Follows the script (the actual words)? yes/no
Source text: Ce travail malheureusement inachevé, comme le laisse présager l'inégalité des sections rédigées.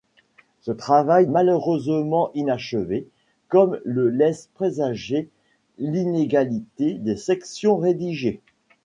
yes